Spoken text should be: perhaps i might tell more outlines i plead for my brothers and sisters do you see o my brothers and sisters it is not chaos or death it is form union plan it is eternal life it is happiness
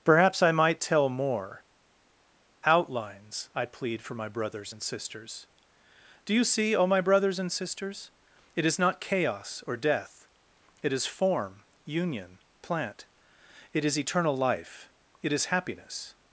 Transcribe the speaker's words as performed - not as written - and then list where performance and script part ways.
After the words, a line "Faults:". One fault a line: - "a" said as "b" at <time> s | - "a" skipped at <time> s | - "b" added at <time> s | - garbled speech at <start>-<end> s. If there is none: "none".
perhaps i might tell more outlines i plead for my brothers and sisters do you see o my brothers and sisters it is not chaos or death it is form union plant it is eternal life it is happiness
Faults:
- "plan" said as "plant" at 12.6 s